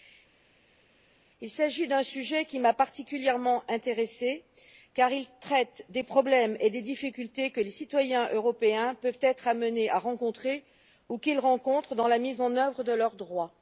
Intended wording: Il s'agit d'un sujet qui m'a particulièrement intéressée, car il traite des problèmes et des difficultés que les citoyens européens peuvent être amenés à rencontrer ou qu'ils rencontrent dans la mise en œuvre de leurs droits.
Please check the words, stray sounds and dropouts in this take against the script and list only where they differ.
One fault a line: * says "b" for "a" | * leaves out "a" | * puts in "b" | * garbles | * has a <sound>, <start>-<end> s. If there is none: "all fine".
all fine